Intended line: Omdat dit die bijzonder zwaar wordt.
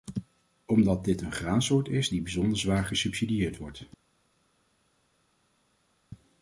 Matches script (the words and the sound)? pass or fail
fail